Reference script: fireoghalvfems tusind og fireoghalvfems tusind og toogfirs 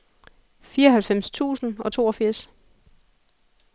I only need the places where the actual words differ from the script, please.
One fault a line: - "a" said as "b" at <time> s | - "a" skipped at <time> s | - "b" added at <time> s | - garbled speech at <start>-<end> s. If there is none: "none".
- "fireoghalvfems tusind og" skipped at 1.9 s